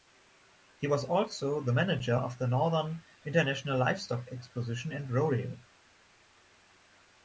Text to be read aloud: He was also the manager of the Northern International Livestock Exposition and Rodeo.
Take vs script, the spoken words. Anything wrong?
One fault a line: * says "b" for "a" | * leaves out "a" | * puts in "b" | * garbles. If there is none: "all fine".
all fine